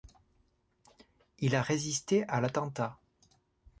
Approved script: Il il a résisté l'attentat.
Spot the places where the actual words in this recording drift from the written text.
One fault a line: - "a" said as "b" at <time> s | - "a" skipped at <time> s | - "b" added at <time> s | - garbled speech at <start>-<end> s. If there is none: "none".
- "il" skipped at 1.6 s
- "à" added at 2.3 s